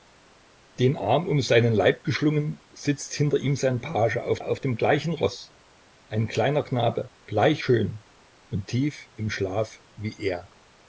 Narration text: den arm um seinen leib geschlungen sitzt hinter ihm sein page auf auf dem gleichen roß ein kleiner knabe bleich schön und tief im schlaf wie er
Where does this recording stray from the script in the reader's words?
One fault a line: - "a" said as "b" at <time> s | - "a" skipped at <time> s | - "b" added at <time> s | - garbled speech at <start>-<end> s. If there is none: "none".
none